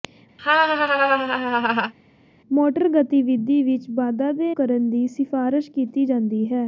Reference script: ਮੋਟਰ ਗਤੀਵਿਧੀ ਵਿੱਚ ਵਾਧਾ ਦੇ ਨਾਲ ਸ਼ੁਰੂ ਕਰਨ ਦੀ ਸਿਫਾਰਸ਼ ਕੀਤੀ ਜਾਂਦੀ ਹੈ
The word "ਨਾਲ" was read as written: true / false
false